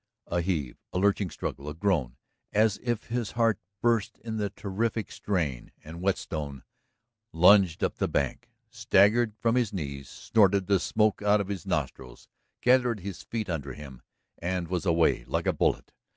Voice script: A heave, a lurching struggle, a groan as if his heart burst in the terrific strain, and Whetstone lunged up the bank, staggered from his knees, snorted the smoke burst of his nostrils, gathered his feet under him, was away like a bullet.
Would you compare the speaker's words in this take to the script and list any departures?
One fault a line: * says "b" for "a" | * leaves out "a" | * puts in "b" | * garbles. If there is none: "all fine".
* says "out" for "burst"
* puts in "and"